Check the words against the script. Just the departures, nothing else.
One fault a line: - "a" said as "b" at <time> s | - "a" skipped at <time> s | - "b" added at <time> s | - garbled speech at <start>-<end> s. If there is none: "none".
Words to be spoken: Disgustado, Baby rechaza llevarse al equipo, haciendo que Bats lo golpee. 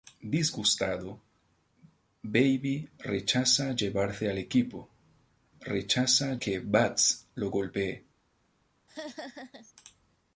- "haciendo" said as "rechaza" at 5.6 s